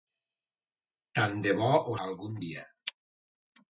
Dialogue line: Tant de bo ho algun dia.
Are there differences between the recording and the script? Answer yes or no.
no